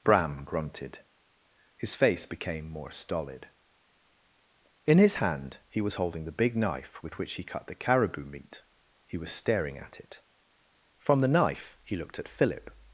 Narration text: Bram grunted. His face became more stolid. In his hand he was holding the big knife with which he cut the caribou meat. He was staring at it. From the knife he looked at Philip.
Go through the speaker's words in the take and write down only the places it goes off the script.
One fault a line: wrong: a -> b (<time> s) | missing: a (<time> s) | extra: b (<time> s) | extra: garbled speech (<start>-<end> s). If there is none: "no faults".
no faults